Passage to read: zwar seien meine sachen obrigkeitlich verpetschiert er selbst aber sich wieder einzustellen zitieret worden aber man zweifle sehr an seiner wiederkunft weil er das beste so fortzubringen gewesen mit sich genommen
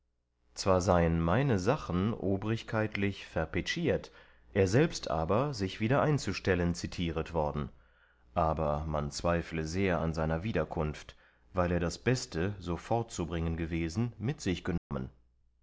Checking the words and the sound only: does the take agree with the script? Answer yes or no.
no